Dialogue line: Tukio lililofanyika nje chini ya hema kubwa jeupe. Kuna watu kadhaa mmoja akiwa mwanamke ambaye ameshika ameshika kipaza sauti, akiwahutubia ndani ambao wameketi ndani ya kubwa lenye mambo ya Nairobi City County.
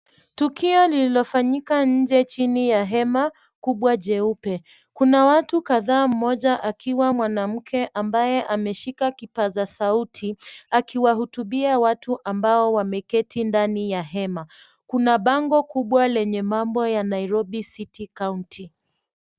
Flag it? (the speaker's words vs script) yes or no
yes